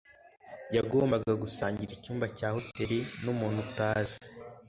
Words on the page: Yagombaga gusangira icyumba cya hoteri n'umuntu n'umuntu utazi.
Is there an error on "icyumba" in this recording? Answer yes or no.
no